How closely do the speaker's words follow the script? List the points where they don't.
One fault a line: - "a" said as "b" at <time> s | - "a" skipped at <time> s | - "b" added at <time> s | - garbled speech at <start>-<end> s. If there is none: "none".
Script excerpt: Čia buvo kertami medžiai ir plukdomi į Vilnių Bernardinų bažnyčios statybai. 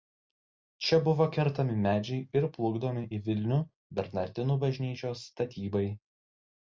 none